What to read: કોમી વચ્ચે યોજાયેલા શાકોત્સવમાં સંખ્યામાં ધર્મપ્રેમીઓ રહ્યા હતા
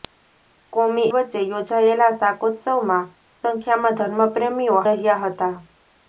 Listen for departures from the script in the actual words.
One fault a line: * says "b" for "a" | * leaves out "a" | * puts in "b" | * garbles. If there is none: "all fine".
all fine